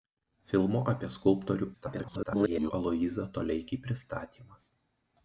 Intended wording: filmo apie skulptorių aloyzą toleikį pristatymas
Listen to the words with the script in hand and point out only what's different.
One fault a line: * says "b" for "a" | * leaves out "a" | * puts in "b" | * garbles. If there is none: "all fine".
* garbles